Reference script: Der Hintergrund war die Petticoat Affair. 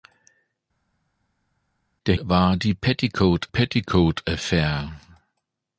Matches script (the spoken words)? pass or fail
fail